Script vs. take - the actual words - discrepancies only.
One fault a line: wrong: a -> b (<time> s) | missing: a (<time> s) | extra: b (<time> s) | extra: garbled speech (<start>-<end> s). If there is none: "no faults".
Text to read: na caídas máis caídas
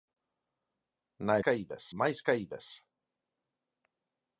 no faults